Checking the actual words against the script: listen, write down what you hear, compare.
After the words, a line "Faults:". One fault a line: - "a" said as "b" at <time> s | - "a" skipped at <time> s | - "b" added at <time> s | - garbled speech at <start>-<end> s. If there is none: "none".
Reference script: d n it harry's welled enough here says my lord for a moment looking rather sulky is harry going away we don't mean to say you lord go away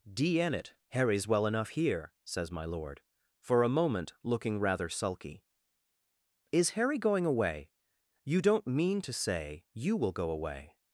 d n it harry's well enough here says my lord for a moment looking rather sulky is harry going away you don't mean to say you will go away
Faults:
- "welled" said as "well" at 1.3 s
- "we" said as "you" at 8.2 s
- "lord" said as "will" at 10.0 s